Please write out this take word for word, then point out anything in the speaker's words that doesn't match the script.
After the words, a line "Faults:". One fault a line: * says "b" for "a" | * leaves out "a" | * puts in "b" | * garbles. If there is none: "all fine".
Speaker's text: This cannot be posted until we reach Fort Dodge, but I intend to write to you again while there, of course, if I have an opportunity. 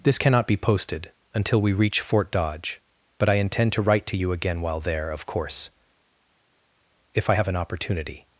This cannot be posted until we reach Fort Dodge, but I intend to write to you again while there, of course, if I have an opportunity.
Faults:
all fine